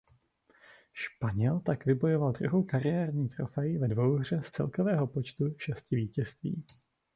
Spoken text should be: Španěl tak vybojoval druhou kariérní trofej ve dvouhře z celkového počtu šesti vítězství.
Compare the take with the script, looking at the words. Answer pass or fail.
pass